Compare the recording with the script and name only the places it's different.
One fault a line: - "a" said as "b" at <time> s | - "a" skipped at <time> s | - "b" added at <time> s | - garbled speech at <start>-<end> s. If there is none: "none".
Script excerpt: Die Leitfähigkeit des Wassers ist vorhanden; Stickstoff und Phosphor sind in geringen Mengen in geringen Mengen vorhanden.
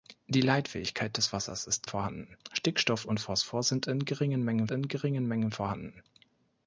none